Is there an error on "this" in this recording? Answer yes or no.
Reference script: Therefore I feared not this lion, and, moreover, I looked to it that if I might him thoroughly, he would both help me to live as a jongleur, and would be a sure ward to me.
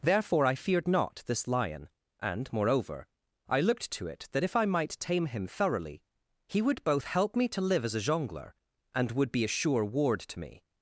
no